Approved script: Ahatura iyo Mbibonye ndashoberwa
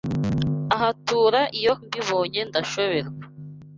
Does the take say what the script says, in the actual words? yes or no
yes